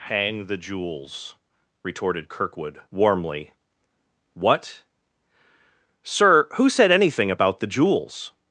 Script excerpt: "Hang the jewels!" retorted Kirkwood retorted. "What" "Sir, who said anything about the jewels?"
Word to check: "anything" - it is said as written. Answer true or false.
true